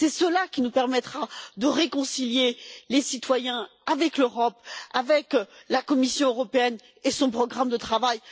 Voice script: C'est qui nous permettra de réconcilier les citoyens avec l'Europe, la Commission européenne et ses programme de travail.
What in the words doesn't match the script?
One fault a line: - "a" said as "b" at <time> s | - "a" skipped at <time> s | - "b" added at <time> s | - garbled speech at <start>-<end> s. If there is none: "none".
- "cela" added at 0.1 s
- "avec" added at 4.9 s
- "ses" said as "son" at 7.1 s